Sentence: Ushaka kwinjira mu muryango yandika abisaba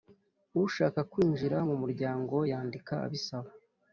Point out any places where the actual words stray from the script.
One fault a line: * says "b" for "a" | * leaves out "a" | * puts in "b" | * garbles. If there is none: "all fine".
all fine